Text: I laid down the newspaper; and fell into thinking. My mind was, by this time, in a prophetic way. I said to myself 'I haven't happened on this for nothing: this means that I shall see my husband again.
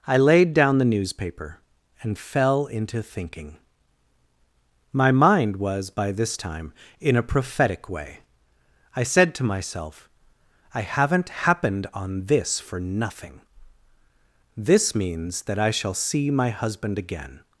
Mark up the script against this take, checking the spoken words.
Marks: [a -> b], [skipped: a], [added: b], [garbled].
I laid down the newspaper; and fell into thinking. My mind was, by this time, in a prophetic way. I said to myself 'I haven't happened on this for nothing: this means that I shall see my husband again.